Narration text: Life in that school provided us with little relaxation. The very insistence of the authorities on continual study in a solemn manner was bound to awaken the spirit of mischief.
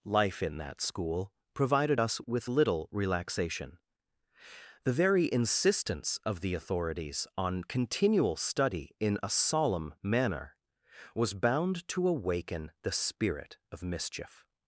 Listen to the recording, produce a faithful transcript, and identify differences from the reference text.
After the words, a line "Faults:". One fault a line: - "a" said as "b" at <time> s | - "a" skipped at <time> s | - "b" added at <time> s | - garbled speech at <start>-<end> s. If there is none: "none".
Life in that school provided us with little relaxation. The very insistence of the authorities on continual study in a solemn manner was bound to awaken the spirit of mischief.
Faults:
none